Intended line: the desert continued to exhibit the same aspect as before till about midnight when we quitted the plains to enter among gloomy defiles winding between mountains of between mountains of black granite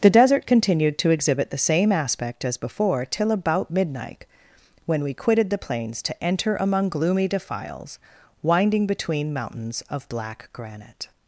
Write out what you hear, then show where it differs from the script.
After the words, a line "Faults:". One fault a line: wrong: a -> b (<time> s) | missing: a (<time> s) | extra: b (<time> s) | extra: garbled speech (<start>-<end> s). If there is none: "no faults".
the desert continued to exhibit the same aspect as before till about midnight when we quitted the plains to enter among gloomy defiles winding between mountains of black granite
Faults:
missing: between mountains of (10.1 s)